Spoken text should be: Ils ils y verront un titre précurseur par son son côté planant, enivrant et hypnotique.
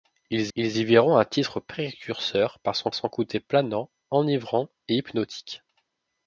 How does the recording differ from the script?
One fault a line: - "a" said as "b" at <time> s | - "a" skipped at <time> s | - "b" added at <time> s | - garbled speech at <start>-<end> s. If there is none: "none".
none